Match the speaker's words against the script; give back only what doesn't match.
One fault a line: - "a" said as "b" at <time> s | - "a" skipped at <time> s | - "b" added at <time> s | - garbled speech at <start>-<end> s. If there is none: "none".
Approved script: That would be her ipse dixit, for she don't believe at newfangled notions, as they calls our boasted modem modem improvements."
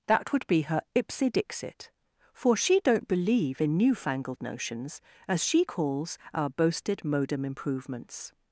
- "at" said as "in" at 3.6 s
- "they" said as "she" at 5.4 s
- "modem" skipped at 7.4 s